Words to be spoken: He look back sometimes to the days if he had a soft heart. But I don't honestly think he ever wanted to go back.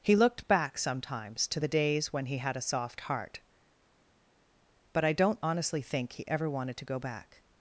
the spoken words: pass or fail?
fail